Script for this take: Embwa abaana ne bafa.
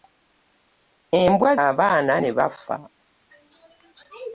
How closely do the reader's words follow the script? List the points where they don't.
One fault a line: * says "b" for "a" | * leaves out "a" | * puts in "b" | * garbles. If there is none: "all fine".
all fine